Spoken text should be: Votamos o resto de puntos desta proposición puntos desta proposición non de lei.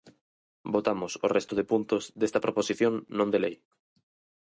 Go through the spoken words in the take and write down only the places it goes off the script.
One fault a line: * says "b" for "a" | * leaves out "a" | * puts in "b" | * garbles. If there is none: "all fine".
* leaves out "puntos desta proposición"